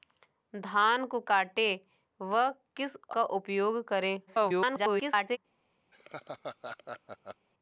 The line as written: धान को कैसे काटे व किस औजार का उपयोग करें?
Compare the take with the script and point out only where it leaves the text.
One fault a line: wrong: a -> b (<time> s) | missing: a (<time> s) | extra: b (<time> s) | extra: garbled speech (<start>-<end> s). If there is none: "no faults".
missing: कैसे (1.2 s)
missing: औजार (3.0 s)
extra: garbled speech (4.3-5.4 s)